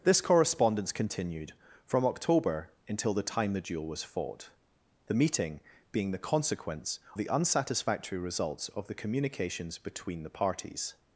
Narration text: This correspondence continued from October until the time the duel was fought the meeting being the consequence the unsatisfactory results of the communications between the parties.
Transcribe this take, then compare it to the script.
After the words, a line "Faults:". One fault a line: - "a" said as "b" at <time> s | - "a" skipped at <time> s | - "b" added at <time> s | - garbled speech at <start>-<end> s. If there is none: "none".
This correspondence continued from October until the time the duel was fought the meeting being the consequence the unsatisfactory results of the communications between the parties.
Faults:
none